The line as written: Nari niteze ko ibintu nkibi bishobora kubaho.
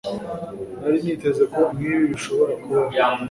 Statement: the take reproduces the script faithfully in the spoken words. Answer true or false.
false